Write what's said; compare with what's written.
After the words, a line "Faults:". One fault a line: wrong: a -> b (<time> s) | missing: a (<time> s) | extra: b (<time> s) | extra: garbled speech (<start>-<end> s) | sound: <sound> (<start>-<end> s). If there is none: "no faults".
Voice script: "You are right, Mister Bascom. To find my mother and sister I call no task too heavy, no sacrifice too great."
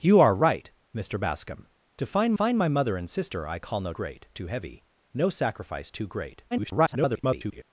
"You are right, Mister Bascom. To find find my mother and sister I call no great too heavy, no sacrifice too great." [garbled]
Faults:
extra: find (2.3 s)
wrong: task -> great (3.9 s)
extra: garbled speech (6.5-7.6 s)